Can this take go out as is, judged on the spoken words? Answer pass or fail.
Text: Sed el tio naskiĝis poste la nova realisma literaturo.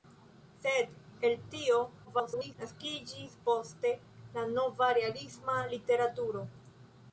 fail